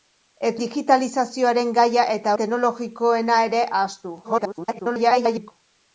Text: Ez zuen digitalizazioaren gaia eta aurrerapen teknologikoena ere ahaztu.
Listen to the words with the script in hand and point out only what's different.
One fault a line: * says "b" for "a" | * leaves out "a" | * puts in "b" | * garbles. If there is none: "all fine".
* leaves out "zuen"
* leaves out "aurrerapen"
* garbles